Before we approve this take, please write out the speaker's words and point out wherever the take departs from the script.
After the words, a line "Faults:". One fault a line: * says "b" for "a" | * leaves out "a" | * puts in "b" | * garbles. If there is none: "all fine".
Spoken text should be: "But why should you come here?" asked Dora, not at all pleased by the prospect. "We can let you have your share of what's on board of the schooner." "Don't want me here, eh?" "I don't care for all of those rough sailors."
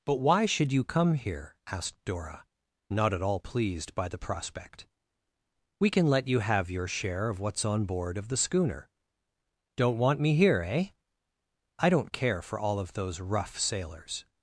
"But why should you come here?" asked Dora, not at all pleased by the prospect. "We can let you have your share of what's on board of the schooner." "Don't want me here, eh?" "I don't care for all of those rough sailors."
Faults:
all fine